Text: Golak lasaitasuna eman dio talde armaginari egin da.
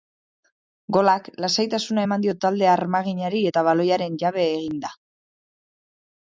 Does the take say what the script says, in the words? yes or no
no